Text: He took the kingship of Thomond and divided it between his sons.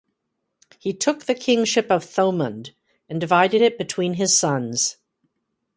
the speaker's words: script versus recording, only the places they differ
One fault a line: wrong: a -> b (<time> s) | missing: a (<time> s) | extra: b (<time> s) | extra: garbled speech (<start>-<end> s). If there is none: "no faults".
no faults